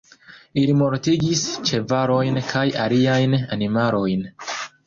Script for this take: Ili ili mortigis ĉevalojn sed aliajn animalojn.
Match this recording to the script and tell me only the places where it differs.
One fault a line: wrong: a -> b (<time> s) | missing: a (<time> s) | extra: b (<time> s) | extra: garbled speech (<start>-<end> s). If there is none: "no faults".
missing: ili (0.7 s)
wrong: sed -> kaj (2.5 s)